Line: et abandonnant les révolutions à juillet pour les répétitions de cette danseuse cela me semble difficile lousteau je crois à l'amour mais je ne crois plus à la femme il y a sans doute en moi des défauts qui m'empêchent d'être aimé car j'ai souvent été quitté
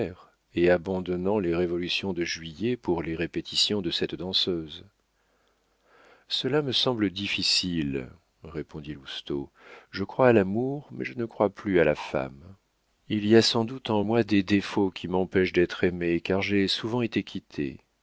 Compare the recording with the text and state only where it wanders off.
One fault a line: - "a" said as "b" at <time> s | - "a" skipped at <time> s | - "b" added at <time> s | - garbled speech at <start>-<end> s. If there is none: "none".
- "à" said as "de" at 2.1 s
- "répondit" added at 8.4 s